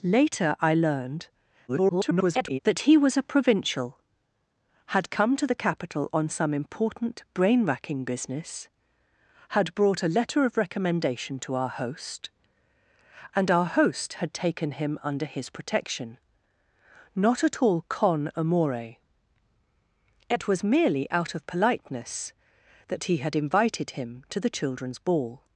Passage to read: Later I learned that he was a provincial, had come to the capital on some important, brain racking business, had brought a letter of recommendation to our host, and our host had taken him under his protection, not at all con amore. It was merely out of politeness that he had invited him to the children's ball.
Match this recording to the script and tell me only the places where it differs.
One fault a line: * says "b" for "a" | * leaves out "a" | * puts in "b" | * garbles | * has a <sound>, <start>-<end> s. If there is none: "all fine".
* garbles